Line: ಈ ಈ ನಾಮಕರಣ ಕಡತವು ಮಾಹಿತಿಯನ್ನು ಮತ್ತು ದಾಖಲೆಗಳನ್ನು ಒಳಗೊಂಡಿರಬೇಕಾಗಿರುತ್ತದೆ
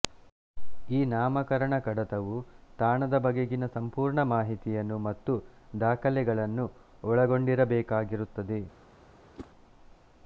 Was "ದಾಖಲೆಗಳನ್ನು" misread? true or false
false